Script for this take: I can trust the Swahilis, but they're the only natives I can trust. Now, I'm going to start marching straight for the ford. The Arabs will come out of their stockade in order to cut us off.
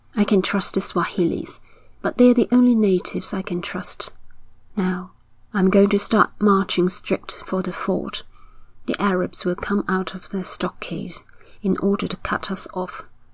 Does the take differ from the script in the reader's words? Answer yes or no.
no